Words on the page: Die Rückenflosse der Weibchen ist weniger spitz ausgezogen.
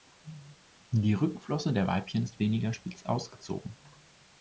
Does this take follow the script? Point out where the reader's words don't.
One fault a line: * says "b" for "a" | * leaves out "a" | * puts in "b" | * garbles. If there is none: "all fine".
all fine